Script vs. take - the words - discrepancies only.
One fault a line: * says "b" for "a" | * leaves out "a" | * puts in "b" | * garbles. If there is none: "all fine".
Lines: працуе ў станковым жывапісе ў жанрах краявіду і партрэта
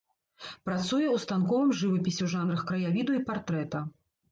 all fine